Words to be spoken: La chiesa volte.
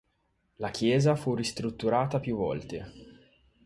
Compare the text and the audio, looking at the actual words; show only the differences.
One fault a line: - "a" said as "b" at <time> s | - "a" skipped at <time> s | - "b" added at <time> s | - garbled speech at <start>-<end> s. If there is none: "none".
- "fu ristrutturata più" added at 1.1 s